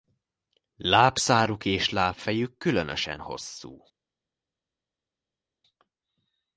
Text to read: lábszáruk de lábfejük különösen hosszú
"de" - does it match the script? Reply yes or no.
no